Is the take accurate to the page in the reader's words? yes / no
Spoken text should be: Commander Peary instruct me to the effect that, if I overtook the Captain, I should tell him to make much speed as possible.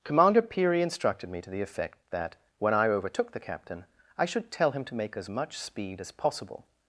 no